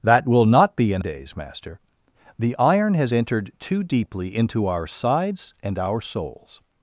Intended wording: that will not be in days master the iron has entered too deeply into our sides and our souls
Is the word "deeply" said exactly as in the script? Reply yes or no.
yes